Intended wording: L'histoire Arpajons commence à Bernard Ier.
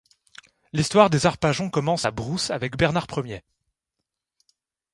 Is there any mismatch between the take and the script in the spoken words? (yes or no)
yes